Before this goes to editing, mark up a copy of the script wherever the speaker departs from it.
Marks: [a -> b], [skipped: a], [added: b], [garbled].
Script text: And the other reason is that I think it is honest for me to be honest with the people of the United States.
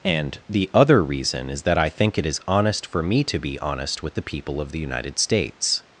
And the other reason is that I think it is honest for me to be honest with the people of the United States.